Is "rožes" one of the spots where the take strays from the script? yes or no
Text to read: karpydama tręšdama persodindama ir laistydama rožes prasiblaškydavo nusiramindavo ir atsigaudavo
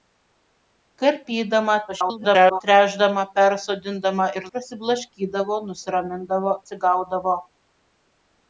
yes